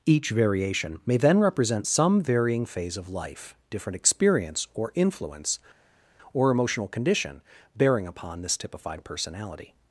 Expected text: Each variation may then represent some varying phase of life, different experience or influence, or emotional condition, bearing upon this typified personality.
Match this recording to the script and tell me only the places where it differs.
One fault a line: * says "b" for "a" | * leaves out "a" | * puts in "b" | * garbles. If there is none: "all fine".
all fine